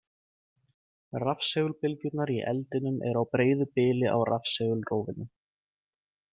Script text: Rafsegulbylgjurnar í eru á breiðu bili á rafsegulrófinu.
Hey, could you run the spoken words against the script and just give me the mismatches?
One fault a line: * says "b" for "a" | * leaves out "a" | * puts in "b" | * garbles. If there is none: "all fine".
* puts in "eldinum"